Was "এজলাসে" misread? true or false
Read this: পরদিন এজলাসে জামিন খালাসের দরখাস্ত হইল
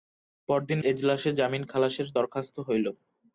false